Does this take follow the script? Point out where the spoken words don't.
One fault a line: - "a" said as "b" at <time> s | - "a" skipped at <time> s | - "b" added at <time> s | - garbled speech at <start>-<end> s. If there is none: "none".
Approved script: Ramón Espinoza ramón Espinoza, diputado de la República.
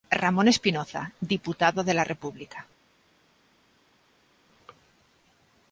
- "ramón Espinoza" skipped at 1.1 s